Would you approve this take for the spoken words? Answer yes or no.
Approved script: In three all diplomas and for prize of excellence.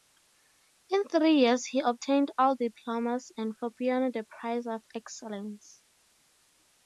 no